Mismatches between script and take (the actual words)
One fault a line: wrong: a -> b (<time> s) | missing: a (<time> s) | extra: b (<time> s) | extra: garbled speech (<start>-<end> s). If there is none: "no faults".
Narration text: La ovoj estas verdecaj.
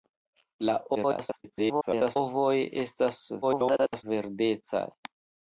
extra: garbled speech (0.9-2.2 s)
extra: garbled speech (3.4-4.0 s)